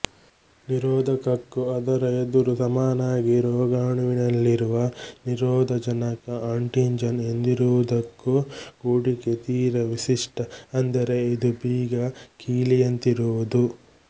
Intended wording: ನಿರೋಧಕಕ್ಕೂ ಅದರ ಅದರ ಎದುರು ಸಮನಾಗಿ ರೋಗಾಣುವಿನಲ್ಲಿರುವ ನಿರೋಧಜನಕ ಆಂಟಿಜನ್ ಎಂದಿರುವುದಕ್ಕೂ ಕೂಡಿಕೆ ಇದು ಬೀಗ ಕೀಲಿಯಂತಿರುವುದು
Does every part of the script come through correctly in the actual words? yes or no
no